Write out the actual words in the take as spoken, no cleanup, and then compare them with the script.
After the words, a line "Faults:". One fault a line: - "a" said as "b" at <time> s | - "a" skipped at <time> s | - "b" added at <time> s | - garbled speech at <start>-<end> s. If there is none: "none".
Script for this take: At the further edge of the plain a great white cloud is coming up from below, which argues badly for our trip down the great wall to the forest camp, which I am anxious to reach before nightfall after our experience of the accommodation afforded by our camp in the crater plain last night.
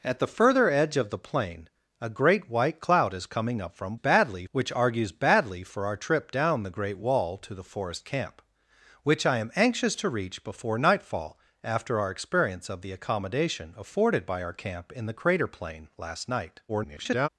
At the further edge of the plain a great white cloud is coming up from badly, which argues badly for our trip down the great wall to the forest camp, which I am anxious to reach before nightfall after our experience of the accommodation afforded by our camp in the crater plain last night. [garbled]
Faults:
- "below" said as "badly" at 3.9 s
- garbled speech at 16.7-17.3 s